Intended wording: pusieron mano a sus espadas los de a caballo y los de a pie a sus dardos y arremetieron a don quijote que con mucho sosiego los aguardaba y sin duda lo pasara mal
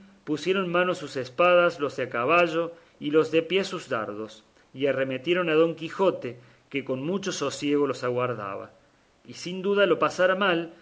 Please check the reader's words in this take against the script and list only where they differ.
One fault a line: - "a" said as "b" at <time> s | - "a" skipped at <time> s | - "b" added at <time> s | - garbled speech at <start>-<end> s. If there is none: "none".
none